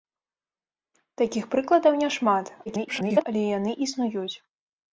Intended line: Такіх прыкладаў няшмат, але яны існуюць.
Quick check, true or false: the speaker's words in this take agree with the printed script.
false